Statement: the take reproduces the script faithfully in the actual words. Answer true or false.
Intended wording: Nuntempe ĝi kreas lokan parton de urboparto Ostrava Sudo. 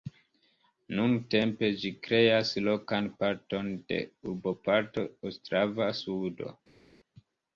true